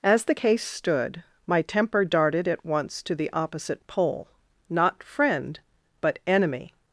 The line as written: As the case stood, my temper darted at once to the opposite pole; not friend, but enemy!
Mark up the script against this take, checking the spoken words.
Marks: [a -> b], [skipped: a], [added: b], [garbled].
As the case stood, my temper darted at once to the opposite pole; not friend, but enemy!